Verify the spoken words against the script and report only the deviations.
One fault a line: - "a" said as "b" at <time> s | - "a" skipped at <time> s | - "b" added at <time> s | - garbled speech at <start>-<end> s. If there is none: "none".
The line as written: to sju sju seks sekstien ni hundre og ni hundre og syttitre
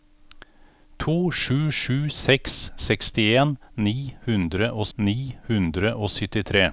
none